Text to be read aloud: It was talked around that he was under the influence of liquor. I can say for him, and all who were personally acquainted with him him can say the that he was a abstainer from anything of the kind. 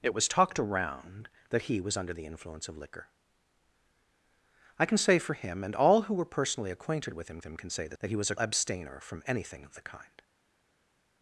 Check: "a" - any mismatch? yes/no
no